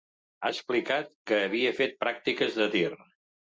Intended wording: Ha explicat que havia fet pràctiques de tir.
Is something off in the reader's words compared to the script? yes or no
no